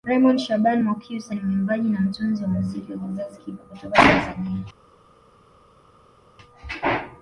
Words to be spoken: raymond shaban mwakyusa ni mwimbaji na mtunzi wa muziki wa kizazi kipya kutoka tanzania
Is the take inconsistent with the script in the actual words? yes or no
no